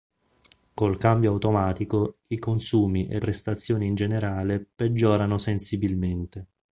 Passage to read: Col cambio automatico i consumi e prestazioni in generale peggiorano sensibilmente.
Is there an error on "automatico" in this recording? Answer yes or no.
no